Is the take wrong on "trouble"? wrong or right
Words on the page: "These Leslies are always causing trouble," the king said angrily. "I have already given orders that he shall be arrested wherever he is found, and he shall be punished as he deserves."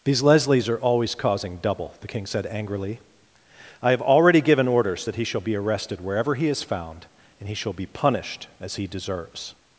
wrong